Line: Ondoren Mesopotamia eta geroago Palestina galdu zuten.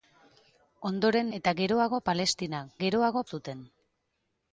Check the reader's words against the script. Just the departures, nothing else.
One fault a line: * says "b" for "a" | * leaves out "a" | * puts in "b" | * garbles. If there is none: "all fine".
* leaves out "Mesopotamia"
* says "geroago" for "galdu"